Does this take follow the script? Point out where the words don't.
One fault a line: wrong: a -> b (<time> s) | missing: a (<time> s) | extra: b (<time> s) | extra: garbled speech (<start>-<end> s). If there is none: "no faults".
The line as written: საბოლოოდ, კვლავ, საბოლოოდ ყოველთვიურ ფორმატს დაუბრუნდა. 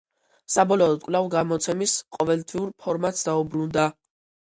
wrong: საბოლოოდ -> გამოცემის (1.3 s)